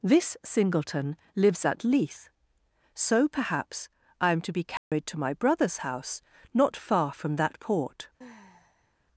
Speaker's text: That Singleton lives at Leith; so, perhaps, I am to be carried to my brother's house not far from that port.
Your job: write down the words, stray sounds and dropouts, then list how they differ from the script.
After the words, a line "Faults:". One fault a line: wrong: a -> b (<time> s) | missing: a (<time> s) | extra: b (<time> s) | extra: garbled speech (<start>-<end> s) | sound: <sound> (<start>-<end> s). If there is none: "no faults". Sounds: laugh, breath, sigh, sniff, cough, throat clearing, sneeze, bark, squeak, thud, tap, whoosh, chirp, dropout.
This Singleton lives at Leith; so, perhaps, I am to be carried to my brother's house not far from that port.
Faults:
wrong: That -> This (0.0 s)
sound: dropout (4.8-4.9 s)
sound: sigh (8.2-8.9 s)